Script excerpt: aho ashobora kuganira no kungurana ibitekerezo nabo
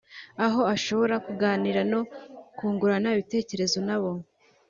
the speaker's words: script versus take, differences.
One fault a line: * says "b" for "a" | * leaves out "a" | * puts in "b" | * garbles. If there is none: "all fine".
all fine